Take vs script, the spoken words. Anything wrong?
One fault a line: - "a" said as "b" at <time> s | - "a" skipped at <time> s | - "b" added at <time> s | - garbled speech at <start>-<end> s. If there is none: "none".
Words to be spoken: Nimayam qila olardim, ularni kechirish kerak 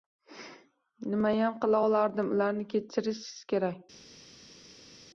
none